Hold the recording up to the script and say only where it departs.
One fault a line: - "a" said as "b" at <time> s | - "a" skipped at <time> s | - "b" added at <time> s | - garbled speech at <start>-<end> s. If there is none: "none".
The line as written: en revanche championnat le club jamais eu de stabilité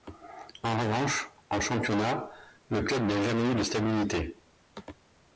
- "en" added at 1.5 s
- "n'a" added at 3.0 s